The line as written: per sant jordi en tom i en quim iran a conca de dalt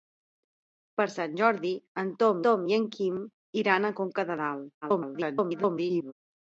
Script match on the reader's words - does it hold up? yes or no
no